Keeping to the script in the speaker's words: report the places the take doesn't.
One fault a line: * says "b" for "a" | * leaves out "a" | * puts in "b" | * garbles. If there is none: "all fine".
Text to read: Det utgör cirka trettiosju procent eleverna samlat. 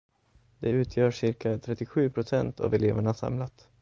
* puts in "av"